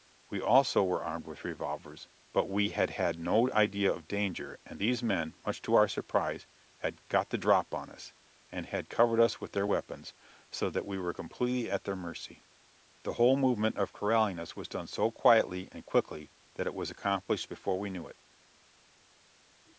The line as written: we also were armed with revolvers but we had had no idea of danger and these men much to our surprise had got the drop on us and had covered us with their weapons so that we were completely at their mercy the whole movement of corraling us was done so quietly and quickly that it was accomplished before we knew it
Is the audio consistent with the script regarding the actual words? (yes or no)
yes